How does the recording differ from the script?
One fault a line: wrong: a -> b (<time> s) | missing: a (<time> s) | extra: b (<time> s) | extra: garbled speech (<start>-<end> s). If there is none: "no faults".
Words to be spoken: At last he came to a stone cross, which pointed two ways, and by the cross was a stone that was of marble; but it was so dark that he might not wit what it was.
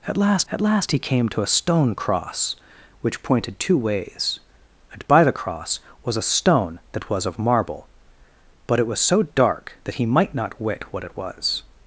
extra: at last (0.5 s)